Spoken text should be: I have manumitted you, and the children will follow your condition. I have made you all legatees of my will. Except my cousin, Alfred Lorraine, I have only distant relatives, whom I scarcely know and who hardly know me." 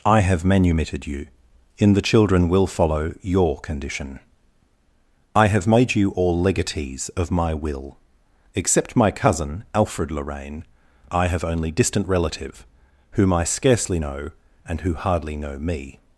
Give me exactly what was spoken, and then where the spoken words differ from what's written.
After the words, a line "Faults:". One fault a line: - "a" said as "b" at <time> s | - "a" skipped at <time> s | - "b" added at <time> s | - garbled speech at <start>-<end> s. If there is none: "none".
I have manumitted you, in the children will follow your condition. I have made you all legatees of my will. Except my cousin, Alfred Lorraine, I have only distant relative, whom I scarcely know and who hardly know me."
Faults:
- "and" said as "in" at 1.8 s
- "relatives" said as "relative" at 12.1 s